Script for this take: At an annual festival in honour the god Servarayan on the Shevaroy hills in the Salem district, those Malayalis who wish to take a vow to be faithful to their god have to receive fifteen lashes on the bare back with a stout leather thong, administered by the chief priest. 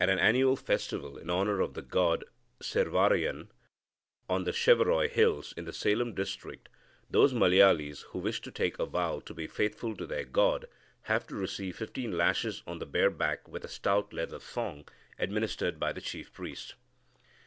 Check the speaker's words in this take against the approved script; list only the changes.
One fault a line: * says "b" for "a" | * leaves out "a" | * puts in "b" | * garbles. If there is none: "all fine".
* puts in "of"